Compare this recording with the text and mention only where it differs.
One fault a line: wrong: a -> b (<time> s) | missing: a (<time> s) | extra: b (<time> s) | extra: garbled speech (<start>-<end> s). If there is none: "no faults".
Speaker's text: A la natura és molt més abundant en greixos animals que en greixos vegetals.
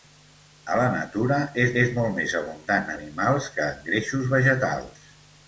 extra: és (1.8 s)
missing: en greixos (2.9 s)